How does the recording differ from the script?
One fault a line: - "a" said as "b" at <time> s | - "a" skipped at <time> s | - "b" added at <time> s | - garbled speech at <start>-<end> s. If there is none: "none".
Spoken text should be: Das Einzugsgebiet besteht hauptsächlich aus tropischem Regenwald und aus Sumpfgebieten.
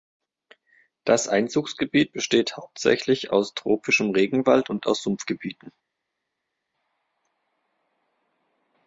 none